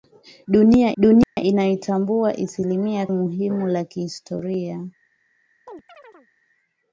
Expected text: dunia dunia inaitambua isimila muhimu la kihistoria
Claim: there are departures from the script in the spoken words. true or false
false